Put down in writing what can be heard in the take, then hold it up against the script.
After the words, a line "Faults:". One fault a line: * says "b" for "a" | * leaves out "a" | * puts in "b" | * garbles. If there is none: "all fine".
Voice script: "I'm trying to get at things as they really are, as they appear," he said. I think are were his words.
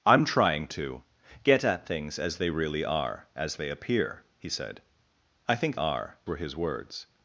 "I'm trying to get at things as they really are, as they appear," he said. I think are were his words.
Faults:
all fine